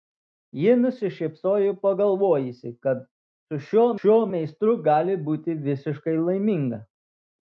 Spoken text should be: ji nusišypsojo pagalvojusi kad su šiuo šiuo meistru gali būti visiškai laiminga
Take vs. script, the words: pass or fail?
pass